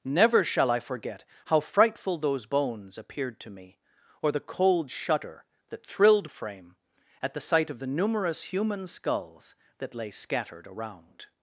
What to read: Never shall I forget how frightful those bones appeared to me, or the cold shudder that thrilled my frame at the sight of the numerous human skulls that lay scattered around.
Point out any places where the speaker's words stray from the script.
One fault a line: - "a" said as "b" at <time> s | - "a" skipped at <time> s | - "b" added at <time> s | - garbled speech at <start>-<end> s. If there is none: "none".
- "my" skipped at 6.3 s